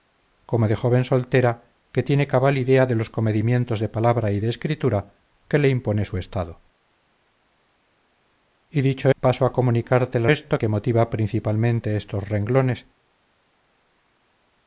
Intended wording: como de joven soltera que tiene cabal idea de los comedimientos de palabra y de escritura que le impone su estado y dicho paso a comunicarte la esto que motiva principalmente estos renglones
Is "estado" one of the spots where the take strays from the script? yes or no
no